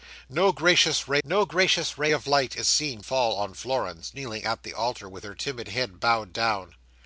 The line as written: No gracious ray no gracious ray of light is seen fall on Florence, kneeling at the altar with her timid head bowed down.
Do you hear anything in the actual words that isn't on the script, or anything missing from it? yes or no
no